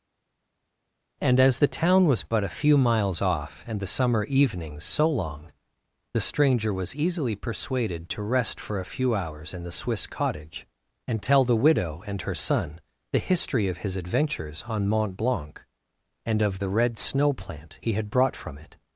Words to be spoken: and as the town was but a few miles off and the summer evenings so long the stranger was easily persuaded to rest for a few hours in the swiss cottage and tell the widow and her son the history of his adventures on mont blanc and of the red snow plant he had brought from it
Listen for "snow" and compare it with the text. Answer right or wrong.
right